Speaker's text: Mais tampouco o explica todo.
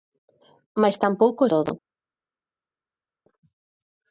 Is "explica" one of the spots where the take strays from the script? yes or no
yes